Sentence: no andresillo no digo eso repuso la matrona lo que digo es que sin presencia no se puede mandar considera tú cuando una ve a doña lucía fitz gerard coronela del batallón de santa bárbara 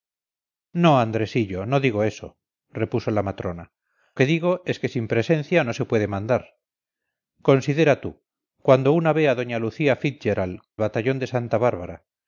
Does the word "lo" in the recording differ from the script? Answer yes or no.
yes